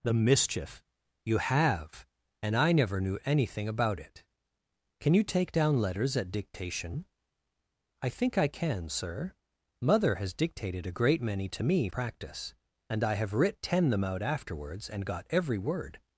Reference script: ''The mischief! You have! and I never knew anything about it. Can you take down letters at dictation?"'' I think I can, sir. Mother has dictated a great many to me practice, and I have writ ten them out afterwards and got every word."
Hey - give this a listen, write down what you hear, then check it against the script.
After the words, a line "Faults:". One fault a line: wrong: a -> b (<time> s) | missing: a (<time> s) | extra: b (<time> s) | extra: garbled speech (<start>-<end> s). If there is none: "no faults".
''The mischief! You have! and I never knew anything about it. Can you take down letters at dictation?"'' I think I can, sir. Mother has dictated a great many to me practice, and I have writ ten them out afterwards and got every word."
Faults:
no faults